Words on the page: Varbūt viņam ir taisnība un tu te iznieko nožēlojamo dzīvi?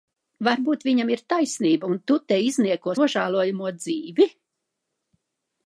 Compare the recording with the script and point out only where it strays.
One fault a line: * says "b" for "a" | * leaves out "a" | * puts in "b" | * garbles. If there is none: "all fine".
all fine